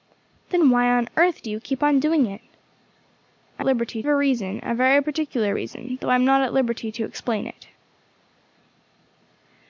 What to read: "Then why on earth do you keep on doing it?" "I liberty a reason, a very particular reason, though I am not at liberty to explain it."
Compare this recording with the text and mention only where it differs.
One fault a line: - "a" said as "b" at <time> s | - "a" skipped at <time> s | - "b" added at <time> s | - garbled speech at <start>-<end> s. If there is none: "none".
none